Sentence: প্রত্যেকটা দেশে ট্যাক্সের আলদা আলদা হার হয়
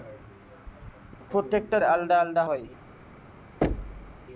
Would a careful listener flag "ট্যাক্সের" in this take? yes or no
yes